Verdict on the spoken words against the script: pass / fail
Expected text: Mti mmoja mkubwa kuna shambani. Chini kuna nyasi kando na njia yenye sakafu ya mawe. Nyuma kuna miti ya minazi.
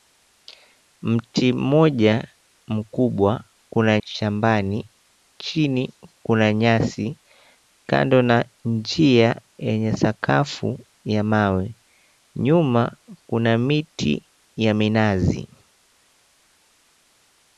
pass